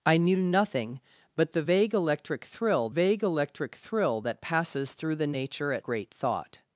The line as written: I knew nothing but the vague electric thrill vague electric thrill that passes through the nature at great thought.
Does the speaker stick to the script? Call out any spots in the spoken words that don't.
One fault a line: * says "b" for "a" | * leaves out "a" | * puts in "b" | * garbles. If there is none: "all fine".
all fine